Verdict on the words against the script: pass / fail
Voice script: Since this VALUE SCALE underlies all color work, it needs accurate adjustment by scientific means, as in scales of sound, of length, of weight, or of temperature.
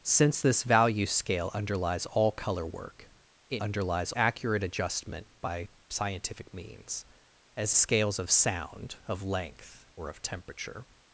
fail